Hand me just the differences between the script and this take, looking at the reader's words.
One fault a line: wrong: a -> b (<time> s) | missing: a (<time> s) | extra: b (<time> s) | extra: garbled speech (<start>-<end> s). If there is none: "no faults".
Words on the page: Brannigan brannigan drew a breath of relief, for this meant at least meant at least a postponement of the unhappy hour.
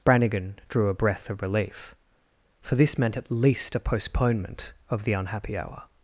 missing: brannigan (0.6 s)
missing: meant at least (3.8 s)